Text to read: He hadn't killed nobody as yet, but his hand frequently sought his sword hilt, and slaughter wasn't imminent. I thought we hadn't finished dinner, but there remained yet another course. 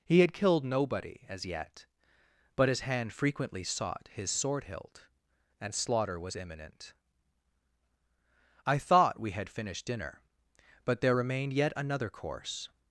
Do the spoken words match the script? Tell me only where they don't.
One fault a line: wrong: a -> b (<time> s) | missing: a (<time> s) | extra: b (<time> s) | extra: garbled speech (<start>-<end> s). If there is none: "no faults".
wrong: hadn't -> had (0.2 s)
wrong: wasn't -> was (6.2 s)
wrong: hadn't -> had (9.3 s)